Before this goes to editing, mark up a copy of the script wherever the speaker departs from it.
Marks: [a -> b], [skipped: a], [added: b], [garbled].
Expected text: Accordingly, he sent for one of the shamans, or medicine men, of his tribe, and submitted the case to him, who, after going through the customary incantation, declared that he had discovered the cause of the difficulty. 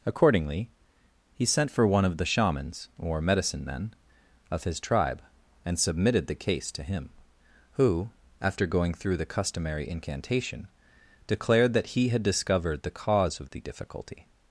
Accordingly, he sent for one of the shamans, or medicine men, of his tribe, and submitted the case to him, who, after going through the customary incantation, declared that he had discovered the cause of the difficulty.